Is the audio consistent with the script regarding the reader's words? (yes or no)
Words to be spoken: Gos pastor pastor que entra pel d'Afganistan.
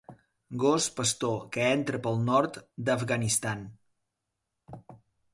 no